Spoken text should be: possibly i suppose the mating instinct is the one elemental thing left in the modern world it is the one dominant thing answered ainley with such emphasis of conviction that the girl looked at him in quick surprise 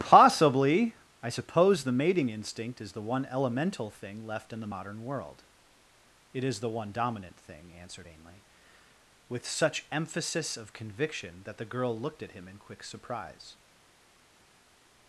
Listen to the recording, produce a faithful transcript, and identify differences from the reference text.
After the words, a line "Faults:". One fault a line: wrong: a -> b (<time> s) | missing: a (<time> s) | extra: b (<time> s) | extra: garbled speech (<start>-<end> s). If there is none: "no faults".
possibly i suppose the mating instinct is the one elemental thing left in the modern world it is the one dominant thing answered ainley with such emphasis of conviction that the girl looked at him in quick surprise
Faults:
no faults